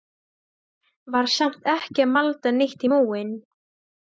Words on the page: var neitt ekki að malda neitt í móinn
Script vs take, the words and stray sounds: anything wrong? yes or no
yes